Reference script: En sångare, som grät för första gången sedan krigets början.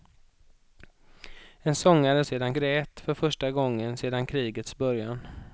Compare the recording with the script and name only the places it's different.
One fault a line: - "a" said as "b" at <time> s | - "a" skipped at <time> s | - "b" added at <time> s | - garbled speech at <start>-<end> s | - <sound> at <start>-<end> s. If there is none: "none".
- "som" said as "sedan" at 2.2 s